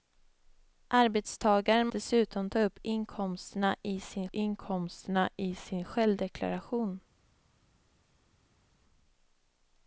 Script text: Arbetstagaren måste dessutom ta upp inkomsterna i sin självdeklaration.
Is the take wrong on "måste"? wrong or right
wrong